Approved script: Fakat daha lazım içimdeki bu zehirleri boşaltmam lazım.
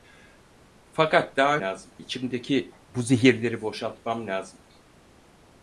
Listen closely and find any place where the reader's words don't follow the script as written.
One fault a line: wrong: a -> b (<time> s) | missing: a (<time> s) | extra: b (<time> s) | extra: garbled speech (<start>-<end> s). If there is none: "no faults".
no faults